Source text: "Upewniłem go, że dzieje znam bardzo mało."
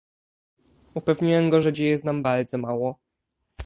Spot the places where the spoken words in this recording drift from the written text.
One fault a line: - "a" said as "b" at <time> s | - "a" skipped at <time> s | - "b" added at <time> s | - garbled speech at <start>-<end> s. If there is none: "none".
none